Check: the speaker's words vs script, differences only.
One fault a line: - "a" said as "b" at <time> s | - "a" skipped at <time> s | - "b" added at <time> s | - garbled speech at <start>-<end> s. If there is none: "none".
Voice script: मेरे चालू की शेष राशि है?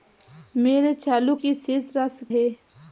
none